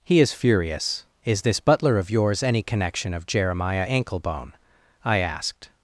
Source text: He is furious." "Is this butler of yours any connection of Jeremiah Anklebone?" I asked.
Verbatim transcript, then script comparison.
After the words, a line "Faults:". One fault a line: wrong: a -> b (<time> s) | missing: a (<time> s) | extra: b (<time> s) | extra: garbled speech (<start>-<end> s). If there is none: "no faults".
He is furious." "Is this butler of yours any connection of Jeremiah Anklebone?" I asked.
Faults:
no faults